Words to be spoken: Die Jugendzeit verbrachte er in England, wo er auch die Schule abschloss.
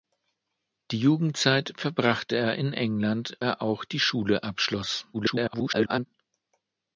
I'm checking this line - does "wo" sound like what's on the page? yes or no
no